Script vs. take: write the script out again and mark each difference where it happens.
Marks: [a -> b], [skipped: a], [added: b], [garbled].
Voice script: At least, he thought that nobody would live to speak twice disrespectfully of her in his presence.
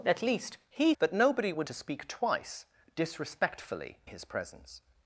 At least, he [skipped: thought] that nobody would [skipped: live] to speak twice disrespectfully [skipped: of her in] his presence.